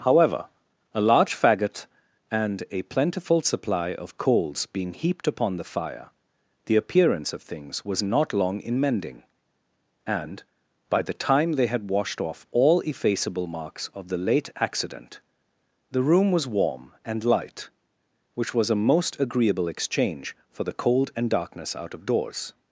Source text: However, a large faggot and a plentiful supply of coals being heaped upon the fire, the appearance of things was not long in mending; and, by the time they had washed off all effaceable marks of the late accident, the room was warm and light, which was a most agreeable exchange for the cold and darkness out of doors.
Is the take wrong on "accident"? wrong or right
right